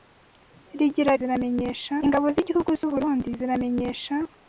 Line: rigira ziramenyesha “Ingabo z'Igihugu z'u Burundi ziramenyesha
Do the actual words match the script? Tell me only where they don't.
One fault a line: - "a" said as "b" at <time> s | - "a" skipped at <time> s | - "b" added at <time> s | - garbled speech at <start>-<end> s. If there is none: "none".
none